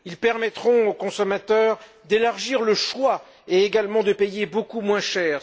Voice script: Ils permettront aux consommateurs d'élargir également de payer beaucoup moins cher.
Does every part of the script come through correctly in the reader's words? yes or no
no